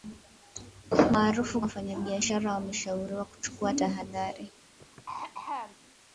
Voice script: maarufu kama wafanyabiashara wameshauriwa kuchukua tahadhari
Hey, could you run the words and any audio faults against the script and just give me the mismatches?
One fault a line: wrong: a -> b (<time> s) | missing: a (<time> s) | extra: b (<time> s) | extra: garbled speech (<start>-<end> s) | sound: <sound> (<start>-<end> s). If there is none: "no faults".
missing: kama (1.6 s)
sound: throat clearing (4.8-5.8 s)